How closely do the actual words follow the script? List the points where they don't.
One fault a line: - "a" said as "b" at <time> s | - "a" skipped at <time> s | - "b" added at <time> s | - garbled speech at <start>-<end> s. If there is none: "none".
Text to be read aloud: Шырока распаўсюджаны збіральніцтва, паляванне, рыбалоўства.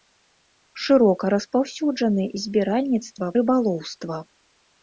- "паляванне" skipped at 3.2 s